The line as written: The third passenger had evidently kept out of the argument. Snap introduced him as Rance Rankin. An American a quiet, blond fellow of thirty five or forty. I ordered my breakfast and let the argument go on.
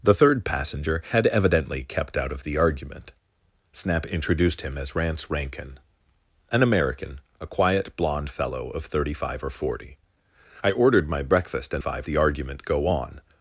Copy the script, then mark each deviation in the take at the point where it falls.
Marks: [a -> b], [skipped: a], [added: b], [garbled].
The third passenger had evidently kept out of the argument. Snap introduced him as Rance Rankin. An American a quiet, blond fellow of thirty five or forty. I ordered my breakfast and [let -> five] the argument go on.